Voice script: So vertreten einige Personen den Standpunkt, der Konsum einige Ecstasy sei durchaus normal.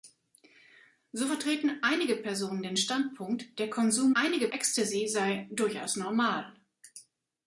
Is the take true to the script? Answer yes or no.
yes